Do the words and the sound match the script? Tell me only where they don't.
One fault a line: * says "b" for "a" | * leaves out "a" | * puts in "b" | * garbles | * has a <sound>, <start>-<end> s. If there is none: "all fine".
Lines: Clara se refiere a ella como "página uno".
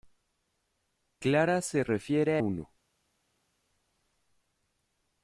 * leaves out "ella como página"